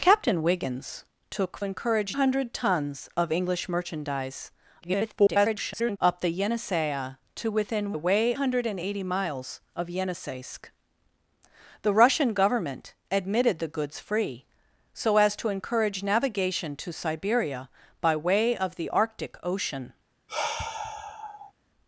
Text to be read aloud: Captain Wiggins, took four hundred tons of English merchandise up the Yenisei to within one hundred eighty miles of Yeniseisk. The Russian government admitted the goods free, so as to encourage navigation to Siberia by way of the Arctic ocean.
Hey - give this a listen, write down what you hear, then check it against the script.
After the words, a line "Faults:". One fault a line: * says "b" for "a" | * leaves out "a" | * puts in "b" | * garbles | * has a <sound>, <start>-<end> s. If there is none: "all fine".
Captain Wiggins, took encourage hundred tons of English merchandise [garbled] up the Yenisei to within way hundred eighty miles of Yeniseisk. The Russian government admitted the goods free, so as to encourage navigation to Siberia by way of the Arctic ocean.
Faults:
* says "encourage" for "four"
* garbles
* says "way" for "one"
* has a sigh, 20.3-21.5 s